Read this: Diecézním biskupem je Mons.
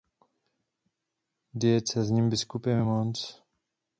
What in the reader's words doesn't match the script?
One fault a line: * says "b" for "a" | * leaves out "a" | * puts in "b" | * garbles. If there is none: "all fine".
all fine